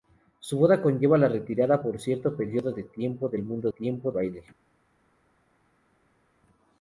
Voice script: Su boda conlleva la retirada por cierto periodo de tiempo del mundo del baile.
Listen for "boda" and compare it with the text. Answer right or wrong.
right